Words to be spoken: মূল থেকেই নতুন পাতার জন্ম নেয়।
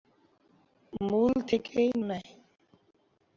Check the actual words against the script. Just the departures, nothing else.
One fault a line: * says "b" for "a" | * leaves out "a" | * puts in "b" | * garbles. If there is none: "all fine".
* leaves out "নতুন পাতার জন্ম"